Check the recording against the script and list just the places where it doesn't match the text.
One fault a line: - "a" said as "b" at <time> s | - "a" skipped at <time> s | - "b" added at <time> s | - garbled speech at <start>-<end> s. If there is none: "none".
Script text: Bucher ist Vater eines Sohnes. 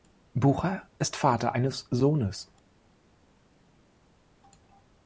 none